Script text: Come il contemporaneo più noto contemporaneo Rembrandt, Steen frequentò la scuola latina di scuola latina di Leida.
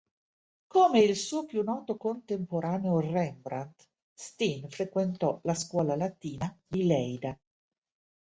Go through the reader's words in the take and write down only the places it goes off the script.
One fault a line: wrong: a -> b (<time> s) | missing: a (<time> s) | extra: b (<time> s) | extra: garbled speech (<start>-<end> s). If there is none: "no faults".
wrong: contemporaneo -> suo (1.2 s)
missing: scuola latina di (6.9 s)